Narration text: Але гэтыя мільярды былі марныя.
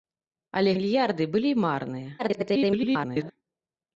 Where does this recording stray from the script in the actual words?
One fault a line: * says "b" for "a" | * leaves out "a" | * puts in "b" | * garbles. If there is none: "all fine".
* leaves out "гэтыя"
* garbles